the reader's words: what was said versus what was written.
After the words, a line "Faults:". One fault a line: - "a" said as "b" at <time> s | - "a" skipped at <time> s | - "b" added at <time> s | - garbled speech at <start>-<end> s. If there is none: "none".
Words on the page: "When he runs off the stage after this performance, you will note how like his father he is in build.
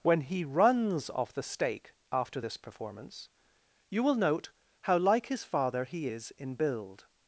"When he runs off the stake after this performance, you will note how like his father he is in build.
Faults:
- "stage" said as "stake" at 1.4 s